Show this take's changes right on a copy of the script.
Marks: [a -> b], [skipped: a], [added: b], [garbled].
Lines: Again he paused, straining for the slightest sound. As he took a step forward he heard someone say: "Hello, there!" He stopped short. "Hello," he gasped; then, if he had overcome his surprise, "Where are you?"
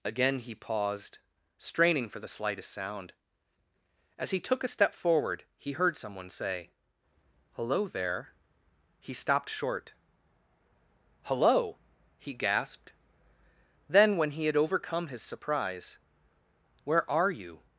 Again he paused, straining for the slightest sound. As he took a step forward he heard someone say: "Hello, there!" He stopped short. "Hello," he gasped; then, [if -> when] he had overcome his surprise, "Where are you?"